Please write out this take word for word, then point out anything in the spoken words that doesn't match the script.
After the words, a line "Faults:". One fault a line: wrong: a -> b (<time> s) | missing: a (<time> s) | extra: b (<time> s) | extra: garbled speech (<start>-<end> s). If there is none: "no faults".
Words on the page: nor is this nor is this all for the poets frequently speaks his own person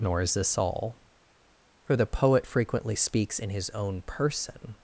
nor is this all for the poet frequently speaks in his own person
Faults:
missing: nor is this (0.6 s)
wrong: poets -> poet (2.1 s)
extra: in (3.4 s)